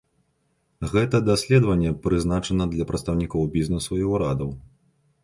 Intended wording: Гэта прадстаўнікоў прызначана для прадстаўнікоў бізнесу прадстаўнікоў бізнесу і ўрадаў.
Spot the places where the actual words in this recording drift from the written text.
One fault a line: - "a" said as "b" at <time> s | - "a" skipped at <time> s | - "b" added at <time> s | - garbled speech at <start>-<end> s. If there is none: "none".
- "прадстаўнікоў" said as "даследаванне" at 1.3 s
- "прадстаўнікоў бізнесу" skipped at 3.9 s